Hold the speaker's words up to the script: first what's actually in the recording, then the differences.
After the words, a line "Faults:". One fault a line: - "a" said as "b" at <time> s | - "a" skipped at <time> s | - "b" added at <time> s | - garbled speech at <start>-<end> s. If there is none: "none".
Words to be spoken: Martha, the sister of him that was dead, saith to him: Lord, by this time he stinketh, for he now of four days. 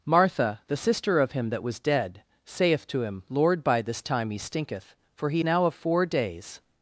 Martha, the sister of him that was dead, saith to him: Lord, by this time he stinketh, for he now of four days.
Faults:
none